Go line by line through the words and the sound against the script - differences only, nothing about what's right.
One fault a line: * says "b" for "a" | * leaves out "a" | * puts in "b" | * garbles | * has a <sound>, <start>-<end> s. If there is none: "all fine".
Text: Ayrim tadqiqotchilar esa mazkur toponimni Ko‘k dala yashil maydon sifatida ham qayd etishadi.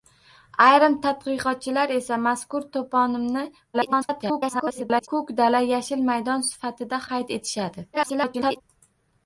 * garbles
* leaves out "ham"
* garbles